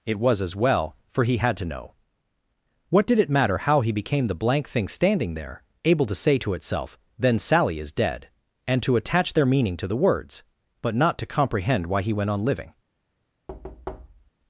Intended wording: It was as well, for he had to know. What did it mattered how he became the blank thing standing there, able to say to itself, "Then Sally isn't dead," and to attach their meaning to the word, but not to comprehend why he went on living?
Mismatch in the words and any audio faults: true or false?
true